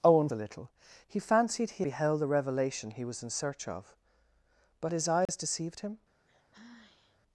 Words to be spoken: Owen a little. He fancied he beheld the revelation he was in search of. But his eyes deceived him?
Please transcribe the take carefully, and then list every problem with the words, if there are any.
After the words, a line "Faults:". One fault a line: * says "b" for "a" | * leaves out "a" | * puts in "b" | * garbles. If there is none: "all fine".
Owen a little. He fancied he beheld the revelation he was in search of. But his eyes deceived him?
Faults:
all fine